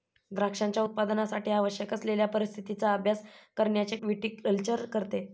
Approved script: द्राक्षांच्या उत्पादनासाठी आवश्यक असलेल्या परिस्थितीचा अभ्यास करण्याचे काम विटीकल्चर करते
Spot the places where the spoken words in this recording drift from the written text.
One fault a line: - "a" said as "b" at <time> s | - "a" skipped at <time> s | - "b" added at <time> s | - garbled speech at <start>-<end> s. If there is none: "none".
- "काम" skipped at 4.0 s